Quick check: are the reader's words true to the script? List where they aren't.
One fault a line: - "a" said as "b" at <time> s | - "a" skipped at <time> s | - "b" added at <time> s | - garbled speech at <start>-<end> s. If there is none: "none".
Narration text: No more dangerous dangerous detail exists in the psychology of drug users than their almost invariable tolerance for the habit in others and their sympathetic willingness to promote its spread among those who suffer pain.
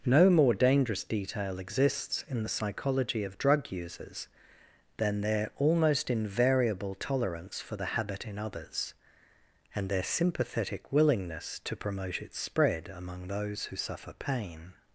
- "dangerous" skipped at 1.0 s